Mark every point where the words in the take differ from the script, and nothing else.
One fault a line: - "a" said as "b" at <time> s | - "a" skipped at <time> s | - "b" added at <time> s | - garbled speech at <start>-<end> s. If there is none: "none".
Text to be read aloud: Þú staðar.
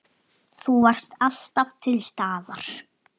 - "varst alltaf til" added at 0.9 s